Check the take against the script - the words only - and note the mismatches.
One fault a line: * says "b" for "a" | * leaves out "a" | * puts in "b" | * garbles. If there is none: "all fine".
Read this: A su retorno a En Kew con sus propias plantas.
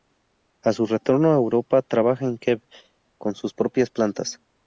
* puts in "Europa trabaja"